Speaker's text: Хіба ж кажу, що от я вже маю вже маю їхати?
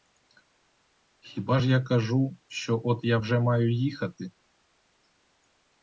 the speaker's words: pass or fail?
fail